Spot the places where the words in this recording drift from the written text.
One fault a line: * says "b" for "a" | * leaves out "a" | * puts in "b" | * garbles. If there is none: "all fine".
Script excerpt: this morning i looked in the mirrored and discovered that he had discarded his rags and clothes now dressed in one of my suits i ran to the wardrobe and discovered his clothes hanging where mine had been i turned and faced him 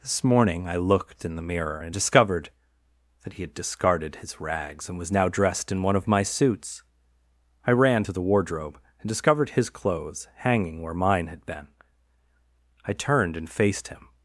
* says "mirror" for "mirrored"
* says "was" for "clothes"